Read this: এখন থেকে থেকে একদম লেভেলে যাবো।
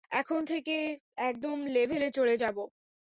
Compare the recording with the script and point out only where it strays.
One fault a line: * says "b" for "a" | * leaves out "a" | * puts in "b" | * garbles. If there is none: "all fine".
* leaves out "থেকে"
* puts in "চলে"